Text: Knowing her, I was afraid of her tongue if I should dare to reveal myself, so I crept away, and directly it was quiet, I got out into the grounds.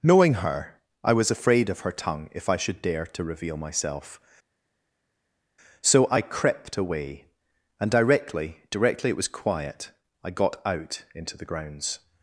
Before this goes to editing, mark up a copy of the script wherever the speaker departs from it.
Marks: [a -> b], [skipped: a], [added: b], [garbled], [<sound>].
Knowing her, I was afraid of her tongue if I should dare to reveal myself, so I crept away, and directly [added: directly] it was quiet, I got out into the grounds.